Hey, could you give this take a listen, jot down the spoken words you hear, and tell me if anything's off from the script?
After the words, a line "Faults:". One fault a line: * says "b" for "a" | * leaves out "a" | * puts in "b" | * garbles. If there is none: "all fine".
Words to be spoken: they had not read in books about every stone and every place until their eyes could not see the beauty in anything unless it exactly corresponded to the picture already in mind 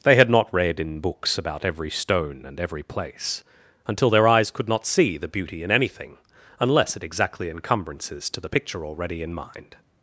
they had not read in books about every stone and every place until their eyes could not see the beauty in anything unless it exactly encumbrances to the picture already in mind
Faults:
* says "encumbrances" for "corresponded"